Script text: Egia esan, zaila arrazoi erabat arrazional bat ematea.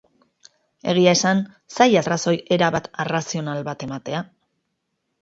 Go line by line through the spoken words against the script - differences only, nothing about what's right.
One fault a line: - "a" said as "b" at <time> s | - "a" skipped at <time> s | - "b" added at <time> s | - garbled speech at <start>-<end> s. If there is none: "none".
none